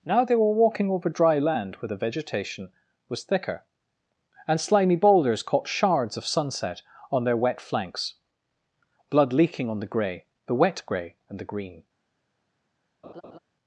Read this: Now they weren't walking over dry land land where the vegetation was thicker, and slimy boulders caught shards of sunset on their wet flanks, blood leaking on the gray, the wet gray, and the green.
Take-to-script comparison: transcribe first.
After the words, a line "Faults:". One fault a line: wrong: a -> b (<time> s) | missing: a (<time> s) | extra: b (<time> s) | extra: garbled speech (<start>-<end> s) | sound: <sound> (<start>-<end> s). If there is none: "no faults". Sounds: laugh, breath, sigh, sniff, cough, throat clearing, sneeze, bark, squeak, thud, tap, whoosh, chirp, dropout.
Now they were walking over dry land where the vegetation was thicker, and slimy boulders caught shards of sunset on their wet flanks, blood leaking on the gray, the wet gray, and the green.
Faults:
wrong: weren't -> were (0.3 s)
missing: land (1.8 s)
sound: laugh (13.0-13.4 s)